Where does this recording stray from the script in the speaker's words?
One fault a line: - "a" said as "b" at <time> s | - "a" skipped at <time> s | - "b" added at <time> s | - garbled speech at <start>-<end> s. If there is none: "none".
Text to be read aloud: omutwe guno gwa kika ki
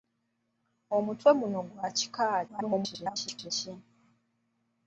- garbled speech at 2.5-3.5 s